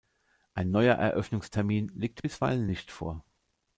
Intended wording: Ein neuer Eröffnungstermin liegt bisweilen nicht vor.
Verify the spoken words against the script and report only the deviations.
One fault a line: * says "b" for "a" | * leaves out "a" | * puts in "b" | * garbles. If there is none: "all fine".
all fine